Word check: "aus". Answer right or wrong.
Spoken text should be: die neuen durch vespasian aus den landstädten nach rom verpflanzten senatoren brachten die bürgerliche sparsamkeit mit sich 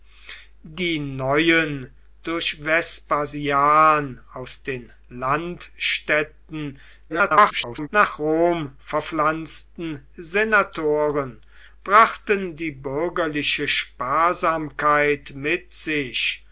right